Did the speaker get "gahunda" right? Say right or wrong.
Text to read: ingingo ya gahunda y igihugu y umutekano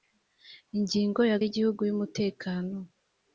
wrong